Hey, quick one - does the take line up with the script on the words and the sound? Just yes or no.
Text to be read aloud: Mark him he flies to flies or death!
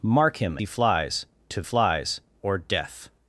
yes